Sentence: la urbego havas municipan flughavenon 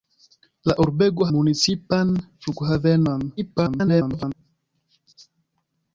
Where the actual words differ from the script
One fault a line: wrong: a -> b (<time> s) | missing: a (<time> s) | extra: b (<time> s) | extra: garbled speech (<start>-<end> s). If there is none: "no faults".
missing: havas (1.3 s)
extra: garbled speech (3.4-4.3 s)